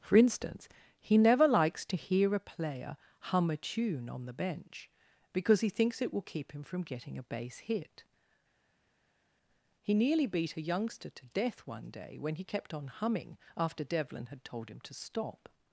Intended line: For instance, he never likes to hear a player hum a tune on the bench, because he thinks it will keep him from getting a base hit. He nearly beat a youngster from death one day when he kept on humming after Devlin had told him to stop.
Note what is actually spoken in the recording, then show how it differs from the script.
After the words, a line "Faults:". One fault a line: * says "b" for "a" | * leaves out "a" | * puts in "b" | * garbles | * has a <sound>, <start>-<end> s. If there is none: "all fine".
For instance, he never likes to hear a player hum a tune on the bench, because he thinks it will keep him from getting a base hit. He nearly beat a youngster to death one day when he kept on humming after Devlin had told him to stop.
Faults:
* says "to" for "from"